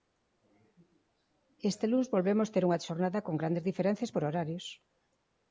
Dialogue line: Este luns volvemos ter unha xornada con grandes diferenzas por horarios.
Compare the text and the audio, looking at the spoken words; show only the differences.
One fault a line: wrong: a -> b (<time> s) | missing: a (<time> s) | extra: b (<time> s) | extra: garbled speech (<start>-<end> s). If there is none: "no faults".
no faults